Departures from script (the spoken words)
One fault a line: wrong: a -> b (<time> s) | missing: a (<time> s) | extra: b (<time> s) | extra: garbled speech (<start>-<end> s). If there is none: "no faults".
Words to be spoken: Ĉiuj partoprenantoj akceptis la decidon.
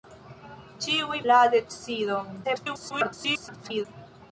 missing: partoprenantoj akceptis (1.2 s)
extra: garbled speech (2.4-3.9 s)